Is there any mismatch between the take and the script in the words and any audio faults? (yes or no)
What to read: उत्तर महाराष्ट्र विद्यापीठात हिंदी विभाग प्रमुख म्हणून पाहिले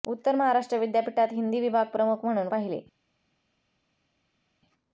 no